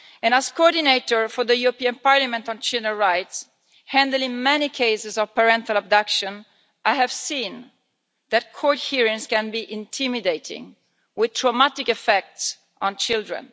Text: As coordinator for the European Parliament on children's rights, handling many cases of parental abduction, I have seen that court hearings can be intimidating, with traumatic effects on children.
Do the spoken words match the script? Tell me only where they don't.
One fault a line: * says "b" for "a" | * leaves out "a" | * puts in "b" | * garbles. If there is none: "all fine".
all fine